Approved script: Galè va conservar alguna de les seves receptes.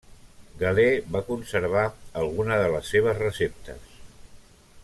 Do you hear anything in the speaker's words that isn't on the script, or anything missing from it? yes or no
no